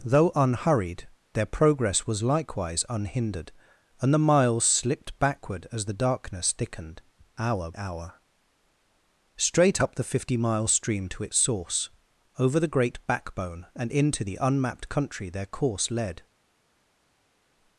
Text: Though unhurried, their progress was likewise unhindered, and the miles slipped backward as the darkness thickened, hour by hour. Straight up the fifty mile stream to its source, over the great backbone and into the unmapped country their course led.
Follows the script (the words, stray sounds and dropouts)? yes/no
no